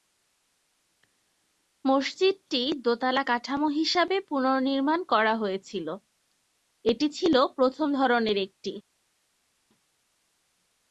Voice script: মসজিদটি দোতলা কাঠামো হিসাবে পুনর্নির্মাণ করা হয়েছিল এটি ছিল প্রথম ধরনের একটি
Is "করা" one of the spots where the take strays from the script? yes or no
no